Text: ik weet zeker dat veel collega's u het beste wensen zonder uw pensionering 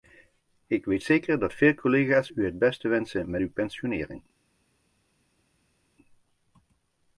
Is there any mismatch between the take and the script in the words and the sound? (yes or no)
yes